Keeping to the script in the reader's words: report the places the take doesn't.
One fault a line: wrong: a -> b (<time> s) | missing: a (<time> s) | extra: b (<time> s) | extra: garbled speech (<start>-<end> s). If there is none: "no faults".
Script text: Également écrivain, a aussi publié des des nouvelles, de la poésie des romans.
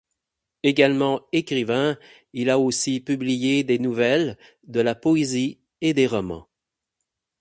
extra: il (2.3 s)
missing: des (3.8 s)
extra: et (5.8 s)